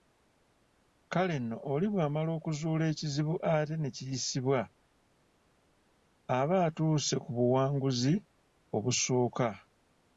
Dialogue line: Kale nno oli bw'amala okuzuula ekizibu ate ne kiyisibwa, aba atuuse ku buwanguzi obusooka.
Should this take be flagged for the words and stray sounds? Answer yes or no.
no